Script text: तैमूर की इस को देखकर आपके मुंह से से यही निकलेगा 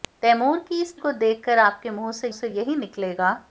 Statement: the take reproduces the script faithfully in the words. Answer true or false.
true